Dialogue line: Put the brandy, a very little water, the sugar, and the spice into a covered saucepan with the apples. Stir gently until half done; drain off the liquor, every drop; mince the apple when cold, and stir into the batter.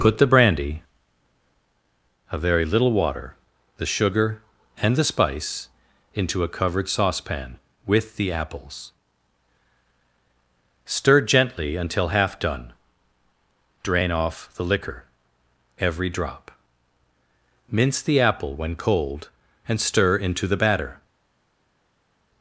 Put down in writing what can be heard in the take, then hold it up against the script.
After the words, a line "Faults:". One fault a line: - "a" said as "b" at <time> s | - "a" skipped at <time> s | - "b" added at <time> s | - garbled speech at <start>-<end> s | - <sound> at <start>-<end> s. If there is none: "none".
Put the brandy, a very little water, the sugar, and the spice into a covered saucepan with the apples. Stir gently until half done; drain off the liquor, every drop; mince the apple when cold, and stir into the batter.
Faults:
none